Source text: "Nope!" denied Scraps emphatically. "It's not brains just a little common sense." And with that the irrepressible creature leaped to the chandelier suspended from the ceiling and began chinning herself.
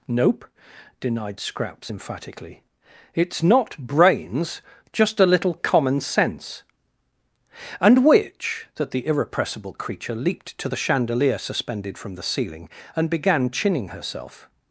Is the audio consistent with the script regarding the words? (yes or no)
no